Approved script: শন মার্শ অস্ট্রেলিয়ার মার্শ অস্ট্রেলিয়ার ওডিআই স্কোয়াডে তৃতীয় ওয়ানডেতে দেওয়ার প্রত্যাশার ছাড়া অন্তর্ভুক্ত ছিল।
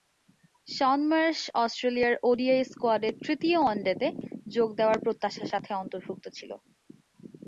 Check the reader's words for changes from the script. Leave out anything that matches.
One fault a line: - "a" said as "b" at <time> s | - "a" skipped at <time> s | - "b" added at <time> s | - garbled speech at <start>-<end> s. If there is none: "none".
- "মার্শ অস্ট্রেলিয়ার" skipped at 2.1 s
- "যোগ" added at 4.5 s
- "ছাড়া" said as "সাথে" at 5.5 s